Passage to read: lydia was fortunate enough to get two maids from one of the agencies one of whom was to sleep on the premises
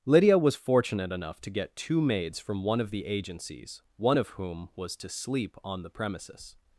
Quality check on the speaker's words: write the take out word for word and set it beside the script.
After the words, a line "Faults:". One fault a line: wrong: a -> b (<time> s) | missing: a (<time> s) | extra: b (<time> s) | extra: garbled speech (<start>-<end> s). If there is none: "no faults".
lydia was fortunate enough to get two maids from one of the agencies one of whom was to sleep on the premises
Faults:
no faults